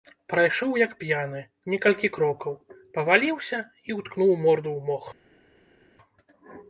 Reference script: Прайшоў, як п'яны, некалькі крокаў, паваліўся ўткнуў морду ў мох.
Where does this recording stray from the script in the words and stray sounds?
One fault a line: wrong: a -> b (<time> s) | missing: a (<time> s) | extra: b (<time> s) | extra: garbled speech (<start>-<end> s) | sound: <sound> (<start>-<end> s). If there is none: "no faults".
extra: і (3.9 s)